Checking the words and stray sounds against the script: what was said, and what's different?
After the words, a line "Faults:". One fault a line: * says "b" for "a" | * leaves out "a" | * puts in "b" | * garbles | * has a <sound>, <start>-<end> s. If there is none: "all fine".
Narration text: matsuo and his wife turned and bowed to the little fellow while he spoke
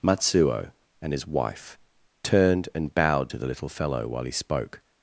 matsuo and his wife turned and bowed to the little fellow while he spoke
Faults:
all fine